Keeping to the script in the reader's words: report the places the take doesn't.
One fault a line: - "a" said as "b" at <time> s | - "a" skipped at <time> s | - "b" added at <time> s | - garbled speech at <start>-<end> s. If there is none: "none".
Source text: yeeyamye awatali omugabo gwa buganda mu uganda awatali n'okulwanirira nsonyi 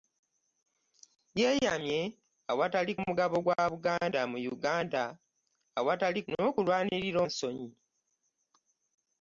none